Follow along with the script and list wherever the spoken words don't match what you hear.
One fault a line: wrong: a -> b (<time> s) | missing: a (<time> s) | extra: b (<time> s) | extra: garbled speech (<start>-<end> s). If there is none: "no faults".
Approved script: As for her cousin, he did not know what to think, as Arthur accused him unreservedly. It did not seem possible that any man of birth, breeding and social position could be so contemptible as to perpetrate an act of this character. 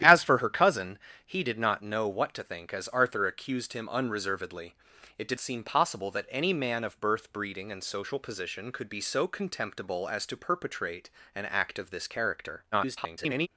missing: not (5.4 s)
extra: garbled speech (12.7-13.5 s)